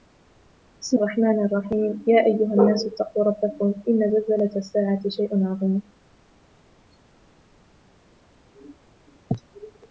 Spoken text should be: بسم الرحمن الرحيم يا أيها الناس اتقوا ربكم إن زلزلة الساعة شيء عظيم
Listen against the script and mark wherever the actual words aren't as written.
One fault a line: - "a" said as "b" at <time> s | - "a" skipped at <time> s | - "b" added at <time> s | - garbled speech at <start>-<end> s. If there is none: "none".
none